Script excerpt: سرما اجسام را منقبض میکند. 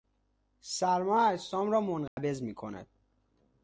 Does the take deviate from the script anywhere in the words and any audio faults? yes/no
yes